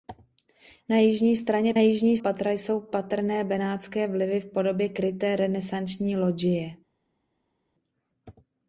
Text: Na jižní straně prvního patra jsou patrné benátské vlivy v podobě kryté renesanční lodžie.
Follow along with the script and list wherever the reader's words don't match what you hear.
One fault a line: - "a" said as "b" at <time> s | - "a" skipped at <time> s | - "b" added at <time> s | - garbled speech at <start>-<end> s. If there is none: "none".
- "prvního" said as "jižní" at 1.8 s